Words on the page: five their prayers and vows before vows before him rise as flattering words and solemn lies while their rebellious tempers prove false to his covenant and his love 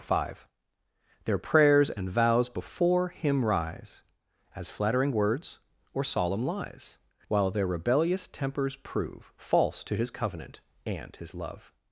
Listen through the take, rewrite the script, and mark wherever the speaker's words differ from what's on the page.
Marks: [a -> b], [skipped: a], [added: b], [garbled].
five their prayers and vows before [skipped: vows before] him rise as flattering words [and -> or] solemn lies while their rebellious tempers prove false to his covenant and his love